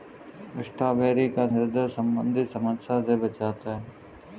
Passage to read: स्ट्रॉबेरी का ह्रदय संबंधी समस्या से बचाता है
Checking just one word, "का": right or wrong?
right